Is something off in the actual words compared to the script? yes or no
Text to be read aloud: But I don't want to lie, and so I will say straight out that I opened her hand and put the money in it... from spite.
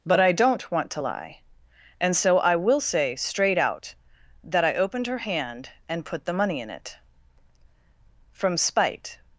no